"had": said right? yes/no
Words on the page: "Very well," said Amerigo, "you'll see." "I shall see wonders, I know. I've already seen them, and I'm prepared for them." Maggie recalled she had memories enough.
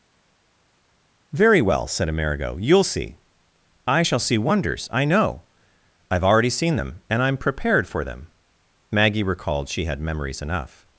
yes